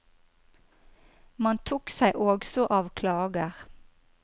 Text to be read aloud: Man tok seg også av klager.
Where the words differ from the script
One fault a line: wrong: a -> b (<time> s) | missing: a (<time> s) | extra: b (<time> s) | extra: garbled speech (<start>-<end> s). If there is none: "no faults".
no faults